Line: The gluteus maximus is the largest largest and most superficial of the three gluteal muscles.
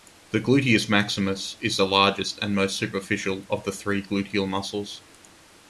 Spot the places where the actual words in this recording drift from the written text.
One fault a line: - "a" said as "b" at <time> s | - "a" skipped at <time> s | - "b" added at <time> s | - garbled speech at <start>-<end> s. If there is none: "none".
- "largest" skipped at 2.4 s